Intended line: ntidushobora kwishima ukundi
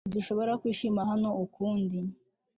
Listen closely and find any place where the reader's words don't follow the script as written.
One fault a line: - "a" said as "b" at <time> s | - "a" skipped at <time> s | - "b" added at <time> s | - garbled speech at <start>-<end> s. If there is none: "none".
- "hano" added at 1.1 s